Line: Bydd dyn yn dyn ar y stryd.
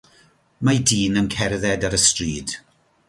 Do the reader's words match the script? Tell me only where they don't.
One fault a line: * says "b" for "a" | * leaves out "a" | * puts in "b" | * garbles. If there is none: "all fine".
* says "Mae" for "Bydd"
* says "cerdded" for "dyn"